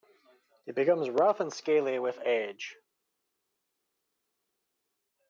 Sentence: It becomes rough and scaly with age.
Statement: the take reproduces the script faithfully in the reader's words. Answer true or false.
true